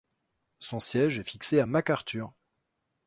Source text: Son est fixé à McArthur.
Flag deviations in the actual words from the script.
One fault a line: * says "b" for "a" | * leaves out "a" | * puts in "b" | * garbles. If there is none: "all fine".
* puts in "siège"